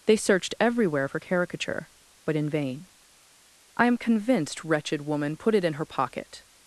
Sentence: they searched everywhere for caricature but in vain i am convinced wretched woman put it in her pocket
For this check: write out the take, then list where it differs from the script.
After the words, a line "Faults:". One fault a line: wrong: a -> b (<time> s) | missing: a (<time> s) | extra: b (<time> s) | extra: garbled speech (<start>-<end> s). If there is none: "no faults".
they searched everywhere for caricature but in vain i am convinced wretched woman put it in her pocket
Faults:
no faults